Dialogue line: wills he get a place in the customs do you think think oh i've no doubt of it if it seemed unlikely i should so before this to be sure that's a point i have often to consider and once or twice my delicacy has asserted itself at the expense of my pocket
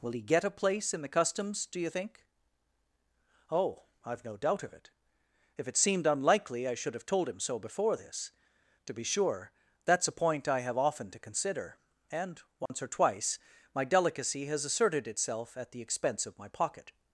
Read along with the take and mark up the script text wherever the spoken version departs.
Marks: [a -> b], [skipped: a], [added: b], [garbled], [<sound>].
[wills -> will] he get a place in the customs do you think [skipped: think] oh i've no doubt of it if it seemed unlikely i should [added: have told him] so before this to be sure that's a point i have often to consider and once [dropout] or twice my delicacy has asserted itself at the expense of my pocket